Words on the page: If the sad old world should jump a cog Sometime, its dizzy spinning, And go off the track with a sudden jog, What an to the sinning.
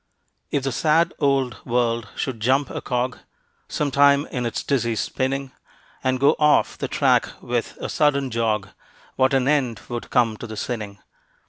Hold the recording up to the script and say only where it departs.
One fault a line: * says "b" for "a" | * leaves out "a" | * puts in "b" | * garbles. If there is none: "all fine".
* puts in "in"
* puts in "end would come"